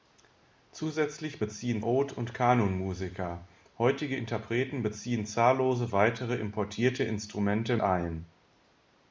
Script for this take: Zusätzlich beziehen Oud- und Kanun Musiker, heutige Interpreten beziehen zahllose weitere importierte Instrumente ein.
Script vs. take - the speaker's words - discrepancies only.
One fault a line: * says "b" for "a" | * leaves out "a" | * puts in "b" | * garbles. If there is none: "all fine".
all fine